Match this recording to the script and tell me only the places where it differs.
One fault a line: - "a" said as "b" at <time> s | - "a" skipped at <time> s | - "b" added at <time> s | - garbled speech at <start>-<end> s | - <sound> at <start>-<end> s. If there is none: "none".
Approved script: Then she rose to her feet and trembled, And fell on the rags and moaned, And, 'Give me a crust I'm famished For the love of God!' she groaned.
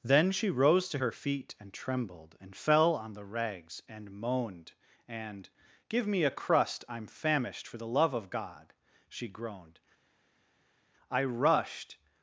- "I rushed" added at 11.1 s